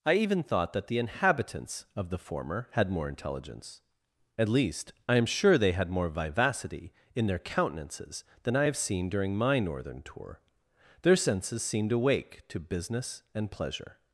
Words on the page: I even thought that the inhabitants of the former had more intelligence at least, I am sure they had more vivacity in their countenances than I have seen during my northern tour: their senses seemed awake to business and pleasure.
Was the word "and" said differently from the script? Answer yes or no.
no